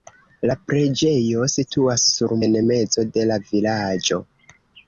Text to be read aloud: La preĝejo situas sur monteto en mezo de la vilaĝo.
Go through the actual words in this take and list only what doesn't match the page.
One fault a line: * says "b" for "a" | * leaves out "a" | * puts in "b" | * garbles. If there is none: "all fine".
* leaves out "monteto"